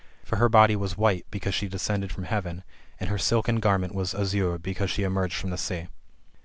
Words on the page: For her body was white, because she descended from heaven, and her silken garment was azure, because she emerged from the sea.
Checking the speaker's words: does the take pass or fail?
pass